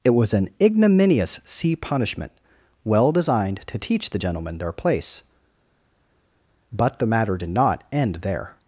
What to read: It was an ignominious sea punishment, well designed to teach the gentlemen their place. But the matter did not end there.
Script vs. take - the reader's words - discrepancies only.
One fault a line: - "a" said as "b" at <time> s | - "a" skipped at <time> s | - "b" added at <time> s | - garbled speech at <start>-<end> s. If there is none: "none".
none